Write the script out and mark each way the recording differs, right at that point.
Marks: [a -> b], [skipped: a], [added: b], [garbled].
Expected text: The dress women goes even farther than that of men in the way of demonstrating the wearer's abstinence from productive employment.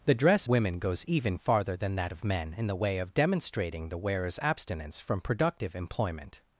The dress women goes even farther than that of men in the way of demonstrating the wearer's abstinence from productive employment.